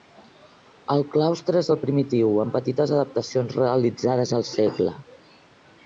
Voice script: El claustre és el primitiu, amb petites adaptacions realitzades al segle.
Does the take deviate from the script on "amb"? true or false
false